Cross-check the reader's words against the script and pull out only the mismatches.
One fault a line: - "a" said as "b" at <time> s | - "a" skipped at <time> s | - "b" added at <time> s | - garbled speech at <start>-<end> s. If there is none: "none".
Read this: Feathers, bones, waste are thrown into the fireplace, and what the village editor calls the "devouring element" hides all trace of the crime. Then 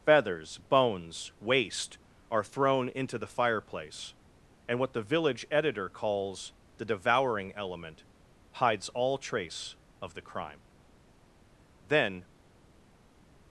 none